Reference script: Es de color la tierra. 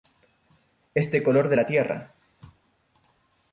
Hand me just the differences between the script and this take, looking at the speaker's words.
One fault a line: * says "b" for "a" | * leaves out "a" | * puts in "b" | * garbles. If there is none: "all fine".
* puts in "de"